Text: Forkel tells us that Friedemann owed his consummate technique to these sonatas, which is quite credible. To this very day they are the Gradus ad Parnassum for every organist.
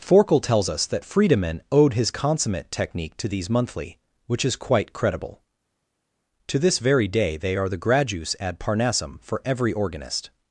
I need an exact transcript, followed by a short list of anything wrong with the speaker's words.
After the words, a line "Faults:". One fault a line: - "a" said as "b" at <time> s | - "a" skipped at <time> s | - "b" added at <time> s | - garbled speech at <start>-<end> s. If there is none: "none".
Forkel tells us that Friedemann owed his consummate technique to these monthly, which is quite credible. To this very day they are the Gradus ad Parnassum for every organist.
Faults:
- "sonatas" said as "monthly" at 3.5 s